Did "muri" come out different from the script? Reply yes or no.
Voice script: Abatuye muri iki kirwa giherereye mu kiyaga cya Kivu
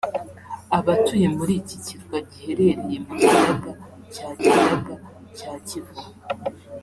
no